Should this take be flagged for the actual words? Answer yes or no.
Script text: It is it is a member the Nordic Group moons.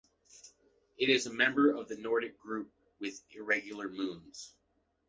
yes